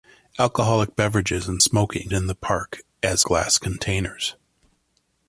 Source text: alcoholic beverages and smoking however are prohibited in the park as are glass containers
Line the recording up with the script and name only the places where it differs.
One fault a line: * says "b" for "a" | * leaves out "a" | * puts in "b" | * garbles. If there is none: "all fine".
* leaves out "however are prohibited"
* leaves out "are"